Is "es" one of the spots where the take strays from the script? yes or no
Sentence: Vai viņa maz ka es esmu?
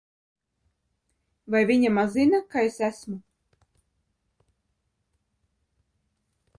no